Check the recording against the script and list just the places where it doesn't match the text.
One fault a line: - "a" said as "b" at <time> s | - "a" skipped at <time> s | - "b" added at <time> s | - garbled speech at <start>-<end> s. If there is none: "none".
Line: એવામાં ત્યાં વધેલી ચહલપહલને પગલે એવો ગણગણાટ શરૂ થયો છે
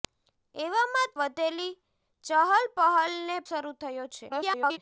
- "ત્યાં" skipped at 1.1 s
- "પગલે એવો ગણગણાટ" skipped at 3.4 s
- garbled speech at 4.3-4.8 s